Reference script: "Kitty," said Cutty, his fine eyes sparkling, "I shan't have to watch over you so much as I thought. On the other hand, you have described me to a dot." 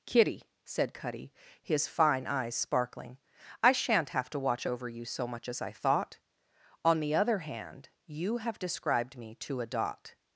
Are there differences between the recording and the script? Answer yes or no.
no